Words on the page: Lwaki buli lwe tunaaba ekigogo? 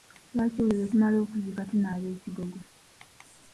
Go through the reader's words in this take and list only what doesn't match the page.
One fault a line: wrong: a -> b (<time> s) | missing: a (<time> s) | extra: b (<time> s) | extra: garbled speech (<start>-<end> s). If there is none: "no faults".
extra: tumala okuziika (0.9 s)